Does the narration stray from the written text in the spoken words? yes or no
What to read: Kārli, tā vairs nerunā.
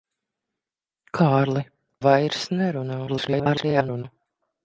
yes